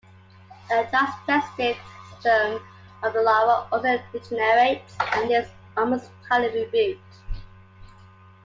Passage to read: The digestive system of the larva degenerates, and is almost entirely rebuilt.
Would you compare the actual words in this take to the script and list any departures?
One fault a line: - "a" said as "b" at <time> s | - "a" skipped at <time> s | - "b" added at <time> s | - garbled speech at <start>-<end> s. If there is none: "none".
- "also" added at 3.7 s